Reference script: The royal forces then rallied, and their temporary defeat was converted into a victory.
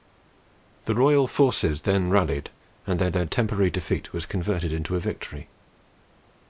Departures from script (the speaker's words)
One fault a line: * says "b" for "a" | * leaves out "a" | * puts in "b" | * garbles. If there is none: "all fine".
* puts in "their"